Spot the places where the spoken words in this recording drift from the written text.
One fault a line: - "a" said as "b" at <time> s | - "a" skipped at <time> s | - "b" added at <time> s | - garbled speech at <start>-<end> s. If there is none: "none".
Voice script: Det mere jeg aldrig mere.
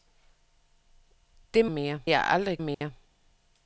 none